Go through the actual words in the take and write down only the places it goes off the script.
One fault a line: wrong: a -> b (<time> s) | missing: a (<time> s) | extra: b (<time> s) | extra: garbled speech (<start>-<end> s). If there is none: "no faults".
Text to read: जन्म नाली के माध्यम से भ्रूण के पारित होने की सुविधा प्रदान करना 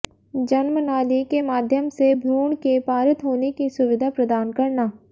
no faults